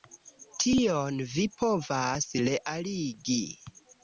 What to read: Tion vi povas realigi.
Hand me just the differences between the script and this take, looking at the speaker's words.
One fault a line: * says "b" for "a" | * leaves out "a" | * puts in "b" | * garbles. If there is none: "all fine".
all fine